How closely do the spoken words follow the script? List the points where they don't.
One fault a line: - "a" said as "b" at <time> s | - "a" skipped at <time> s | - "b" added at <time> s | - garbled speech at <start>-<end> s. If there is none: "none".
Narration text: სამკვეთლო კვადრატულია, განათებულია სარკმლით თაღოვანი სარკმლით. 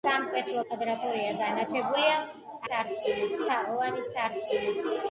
none